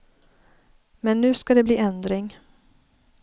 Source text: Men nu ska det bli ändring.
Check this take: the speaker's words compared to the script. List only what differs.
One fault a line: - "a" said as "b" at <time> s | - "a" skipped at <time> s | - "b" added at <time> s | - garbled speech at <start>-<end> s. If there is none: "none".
none